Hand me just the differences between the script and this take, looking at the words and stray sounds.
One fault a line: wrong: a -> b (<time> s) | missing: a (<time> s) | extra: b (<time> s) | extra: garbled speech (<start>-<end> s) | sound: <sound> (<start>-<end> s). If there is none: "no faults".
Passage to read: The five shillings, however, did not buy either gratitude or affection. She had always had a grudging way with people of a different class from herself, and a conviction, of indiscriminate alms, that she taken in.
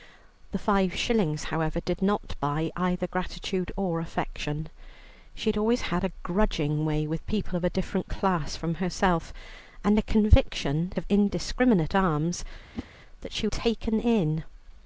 sound: whoosh (12.7-12.9 s)